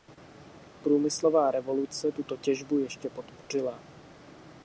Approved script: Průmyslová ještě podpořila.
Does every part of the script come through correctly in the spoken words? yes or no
no